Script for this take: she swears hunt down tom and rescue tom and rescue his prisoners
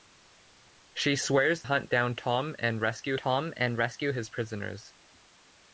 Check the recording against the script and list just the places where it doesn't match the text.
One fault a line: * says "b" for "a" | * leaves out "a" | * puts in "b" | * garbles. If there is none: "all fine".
all fine